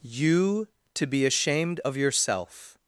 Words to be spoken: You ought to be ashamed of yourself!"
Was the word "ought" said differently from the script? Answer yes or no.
yes